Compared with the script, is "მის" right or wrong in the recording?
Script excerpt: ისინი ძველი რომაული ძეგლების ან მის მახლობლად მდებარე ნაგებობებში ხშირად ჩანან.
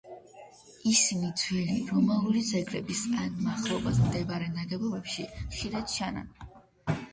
wrong